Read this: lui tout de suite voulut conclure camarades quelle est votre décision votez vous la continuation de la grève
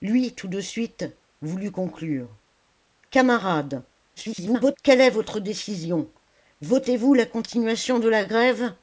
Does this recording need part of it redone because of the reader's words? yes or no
yes